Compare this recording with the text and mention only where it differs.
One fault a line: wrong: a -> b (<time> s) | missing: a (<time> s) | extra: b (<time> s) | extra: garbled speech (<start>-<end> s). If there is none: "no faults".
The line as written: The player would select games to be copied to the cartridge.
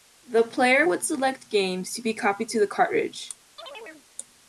no faults